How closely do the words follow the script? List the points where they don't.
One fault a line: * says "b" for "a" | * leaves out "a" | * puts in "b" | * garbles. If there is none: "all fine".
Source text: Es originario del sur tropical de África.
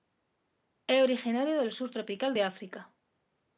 all fine